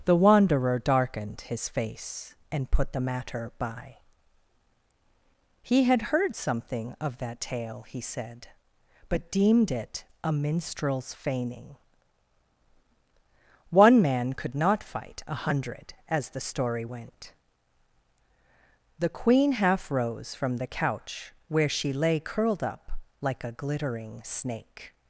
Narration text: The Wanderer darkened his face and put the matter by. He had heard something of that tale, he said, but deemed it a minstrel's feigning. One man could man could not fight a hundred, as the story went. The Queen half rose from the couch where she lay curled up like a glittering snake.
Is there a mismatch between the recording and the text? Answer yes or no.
yes